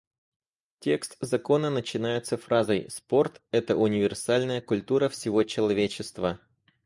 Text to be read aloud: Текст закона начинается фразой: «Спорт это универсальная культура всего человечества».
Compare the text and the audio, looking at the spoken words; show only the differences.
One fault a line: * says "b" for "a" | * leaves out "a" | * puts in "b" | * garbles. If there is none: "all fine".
all fine